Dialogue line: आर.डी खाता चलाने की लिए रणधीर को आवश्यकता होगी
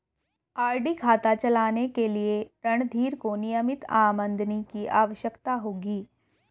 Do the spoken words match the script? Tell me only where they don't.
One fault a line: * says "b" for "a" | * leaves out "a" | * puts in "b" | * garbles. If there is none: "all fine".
* says "के" for "की"
* puts in "नियमित आमदनी की"